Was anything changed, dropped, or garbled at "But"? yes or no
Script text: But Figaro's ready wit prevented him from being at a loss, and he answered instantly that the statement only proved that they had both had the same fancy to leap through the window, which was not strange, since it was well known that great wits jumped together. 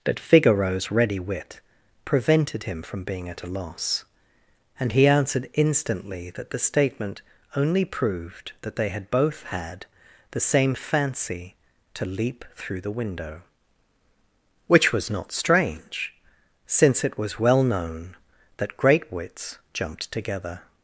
yes